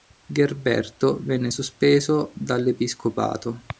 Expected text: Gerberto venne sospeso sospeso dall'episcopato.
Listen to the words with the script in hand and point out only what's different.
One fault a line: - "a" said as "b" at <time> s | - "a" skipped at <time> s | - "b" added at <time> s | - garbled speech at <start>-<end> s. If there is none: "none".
- "sospeso" skipped at 2.3 s